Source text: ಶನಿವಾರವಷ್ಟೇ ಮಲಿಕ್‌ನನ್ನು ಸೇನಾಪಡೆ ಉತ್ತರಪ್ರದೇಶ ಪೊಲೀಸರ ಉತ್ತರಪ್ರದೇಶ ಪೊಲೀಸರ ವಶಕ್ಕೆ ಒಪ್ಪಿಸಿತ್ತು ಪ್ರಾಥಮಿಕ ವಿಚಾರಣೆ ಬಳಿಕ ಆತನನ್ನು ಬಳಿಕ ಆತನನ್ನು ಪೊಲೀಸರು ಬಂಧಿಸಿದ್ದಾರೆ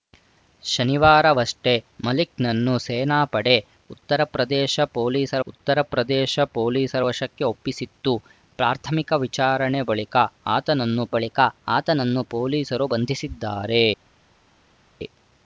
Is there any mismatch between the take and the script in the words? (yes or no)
no